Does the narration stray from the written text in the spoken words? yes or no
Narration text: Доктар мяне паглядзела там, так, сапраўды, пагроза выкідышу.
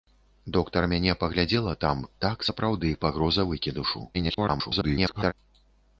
yes